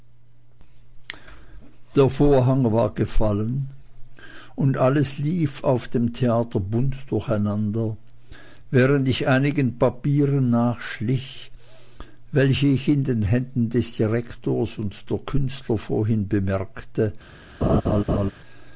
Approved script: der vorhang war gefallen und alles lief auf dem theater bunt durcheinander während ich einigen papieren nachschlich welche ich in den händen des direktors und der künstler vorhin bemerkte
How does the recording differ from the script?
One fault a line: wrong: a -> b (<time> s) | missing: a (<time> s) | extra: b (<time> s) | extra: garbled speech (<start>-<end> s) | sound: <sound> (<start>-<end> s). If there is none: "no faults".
sound: laugh (17.6-18.3 s)